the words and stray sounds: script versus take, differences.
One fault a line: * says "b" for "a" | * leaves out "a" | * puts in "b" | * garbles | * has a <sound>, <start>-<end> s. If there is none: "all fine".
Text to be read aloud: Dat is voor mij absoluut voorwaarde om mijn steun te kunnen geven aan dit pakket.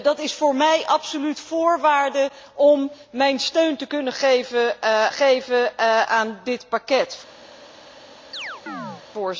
* puts in "geven"
* has a chirp, 8.3-9.0 s